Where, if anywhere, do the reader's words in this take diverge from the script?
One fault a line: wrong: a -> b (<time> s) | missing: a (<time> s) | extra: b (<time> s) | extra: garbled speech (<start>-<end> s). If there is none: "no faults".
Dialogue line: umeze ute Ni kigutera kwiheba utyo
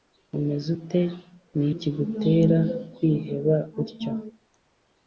no faults